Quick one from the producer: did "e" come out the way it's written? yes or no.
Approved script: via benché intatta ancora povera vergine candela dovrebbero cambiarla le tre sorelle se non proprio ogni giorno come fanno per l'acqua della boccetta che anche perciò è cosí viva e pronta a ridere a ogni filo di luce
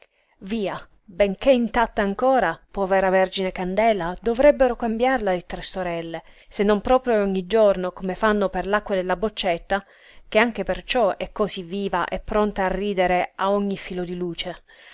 yes